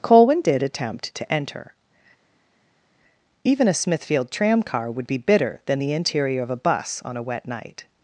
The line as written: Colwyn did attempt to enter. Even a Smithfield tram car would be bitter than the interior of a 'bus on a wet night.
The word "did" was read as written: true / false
true